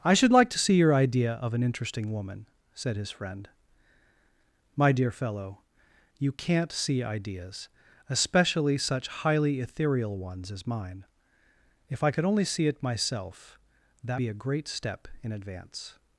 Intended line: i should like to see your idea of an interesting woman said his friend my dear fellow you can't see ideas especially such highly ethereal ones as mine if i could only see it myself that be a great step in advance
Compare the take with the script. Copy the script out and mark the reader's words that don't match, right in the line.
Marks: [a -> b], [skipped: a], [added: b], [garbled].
i should like to see your idea of an interesting woman said his friend my dear fellow you can't see ideas especially such highly ethereal ones as mine if i could only see it myself that be a great step in advance